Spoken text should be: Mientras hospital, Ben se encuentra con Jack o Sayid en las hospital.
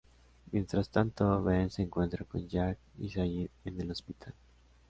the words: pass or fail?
fail